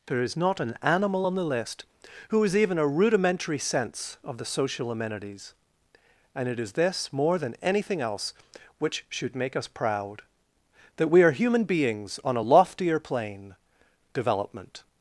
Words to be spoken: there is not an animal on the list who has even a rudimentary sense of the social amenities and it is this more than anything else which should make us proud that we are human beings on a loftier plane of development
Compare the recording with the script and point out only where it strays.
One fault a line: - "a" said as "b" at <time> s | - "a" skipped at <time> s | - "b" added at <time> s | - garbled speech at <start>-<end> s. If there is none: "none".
- "of" skipped at 13.5 s